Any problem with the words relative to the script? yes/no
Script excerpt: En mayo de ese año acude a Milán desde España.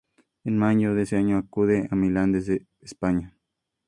no